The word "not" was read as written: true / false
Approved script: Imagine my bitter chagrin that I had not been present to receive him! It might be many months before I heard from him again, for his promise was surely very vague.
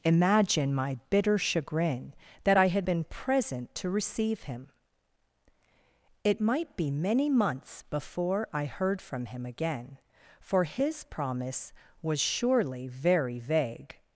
false